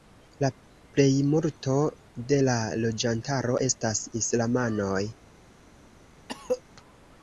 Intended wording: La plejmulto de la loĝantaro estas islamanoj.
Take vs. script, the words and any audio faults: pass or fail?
fail